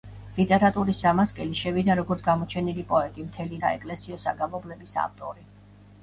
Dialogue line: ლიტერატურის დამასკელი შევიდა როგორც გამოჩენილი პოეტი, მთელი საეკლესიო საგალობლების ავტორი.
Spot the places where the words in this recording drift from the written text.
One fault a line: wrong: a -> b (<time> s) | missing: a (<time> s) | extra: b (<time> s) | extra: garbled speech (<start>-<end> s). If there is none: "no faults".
no faults